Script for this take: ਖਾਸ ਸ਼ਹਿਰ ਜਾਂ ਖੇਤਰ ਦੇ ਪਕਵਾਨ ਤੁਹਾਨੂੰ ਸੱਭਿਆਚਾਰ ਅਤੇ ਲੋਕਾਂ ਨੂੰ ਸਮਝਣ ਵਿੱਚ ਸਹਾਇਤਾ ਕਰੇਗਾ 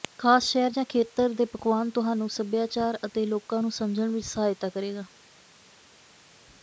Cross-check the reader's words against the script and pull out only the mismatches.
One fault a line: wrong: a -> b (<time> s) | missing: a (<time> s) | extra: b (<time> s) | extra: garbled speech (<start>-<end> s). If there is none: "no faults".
no faults